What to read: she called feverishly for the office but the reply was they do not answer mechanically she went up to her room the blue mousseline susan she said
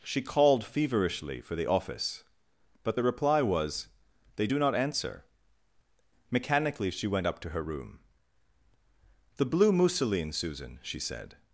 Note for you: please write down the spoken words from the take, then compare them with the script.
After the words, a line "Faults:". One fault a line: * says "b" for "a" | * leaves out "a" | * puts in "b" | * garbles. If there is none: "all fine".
she called feverishly for the office but the reply was they do not answer mechanically she went up to her room the blue mousseline susan she said
Faults:
all fine